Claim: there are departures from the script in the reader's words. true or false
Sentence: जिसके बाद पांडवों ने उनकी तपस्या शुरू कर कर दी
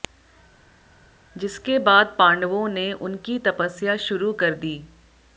true